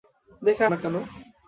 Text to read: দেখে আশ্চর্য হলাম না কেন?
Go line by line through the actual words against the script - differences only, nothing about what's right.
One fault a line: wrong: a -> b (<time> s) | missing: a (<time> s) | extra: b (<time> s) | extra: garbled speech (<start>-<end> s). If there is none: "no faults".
missing: আশ্চর্য হলাম (0.6 s)